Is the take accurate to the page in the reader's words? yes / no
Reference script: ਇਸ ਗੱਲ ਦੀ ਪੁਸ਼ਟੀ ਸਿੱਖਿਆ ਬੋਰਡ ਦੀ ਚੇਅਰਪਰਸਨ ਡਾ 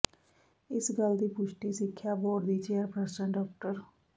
yes